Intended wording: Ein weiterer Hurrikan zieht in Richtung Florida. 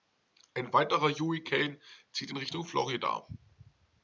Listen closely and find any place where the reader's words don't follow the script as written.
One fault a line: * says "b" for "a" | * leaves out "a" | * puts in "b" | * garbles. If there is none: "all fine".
all fine